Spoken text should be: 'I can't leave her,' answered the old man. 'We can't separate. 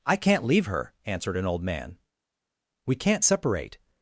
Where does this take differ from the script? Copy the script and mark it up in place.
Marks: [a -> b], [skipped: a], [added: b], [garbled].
'I can't leave her,' answered [the -> an] old man. 'We can't separate.